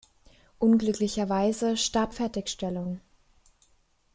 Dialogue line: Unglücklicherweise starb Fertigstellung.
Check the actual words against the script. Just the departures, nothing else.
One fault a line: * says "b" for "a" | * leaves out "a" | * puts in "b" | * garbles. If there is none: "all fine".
all fine